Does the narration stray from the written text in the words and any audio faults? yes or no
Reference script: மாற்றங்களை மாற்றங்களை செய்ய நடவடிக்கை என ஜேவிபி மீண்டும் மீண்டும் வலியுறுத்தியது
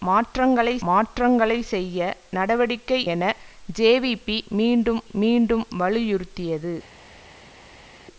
no